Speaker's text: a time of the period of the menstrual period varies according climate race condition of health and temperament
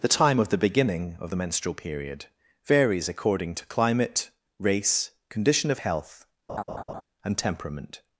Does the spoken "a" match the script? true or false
false